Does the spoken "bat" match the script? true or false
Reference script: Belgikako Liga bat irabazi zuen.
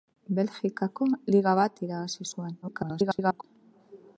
true